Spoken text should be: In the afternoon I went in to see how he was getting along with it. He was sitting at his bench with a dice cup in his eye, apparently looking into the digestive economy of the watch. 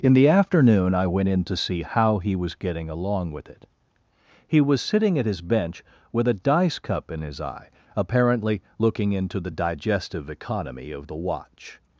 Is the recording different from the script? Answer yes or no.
no